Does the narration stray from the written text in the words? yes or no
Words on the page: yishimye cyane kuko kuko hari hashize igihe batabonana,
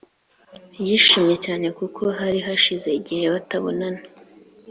yes